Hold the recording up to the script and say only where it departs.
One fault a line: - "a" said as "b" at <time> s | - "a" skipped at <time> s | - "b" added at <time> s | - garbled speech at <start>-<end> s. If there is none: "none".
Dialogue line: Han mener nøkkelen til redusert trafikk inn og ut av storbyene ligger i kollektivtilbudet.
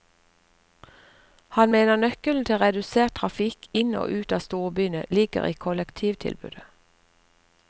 none